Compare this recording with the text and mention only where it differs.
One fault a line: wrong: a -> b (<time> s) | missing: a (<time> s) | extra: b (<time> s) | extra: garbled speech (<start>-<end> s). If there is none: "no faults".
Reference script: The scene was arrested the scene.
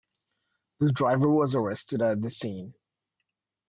wrong: scene -> driver (0.9 s)
extra: at (2.0 s)